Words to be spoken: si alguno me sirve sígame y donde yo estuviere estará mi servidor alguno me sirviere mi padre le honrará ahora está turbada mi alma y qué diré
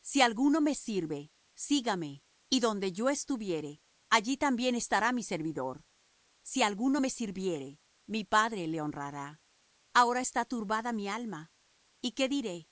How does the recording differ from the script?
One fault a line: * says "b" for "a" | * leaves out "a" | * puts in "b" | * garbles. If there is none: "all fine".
* puts in "allí también"
* puts in "si"